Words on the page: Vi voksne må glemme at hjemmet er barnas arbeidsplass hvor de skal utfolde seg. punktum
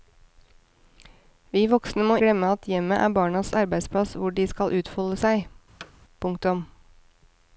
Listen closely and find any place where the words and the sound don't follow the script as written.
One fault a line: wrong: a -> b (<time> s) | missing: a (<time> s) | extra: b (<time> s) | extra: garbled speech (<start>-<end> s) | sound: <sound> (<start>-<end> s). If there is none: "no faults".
sound: thud (5.8-5.9 s)